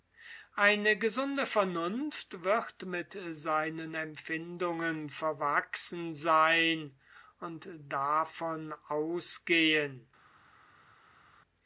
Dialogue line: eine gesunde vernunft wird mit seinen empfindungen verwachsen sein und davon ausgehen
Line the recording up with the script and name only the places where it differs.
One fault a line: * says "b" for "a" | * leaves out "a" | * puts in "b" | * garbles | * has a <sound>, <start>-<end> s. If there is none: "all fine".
all fine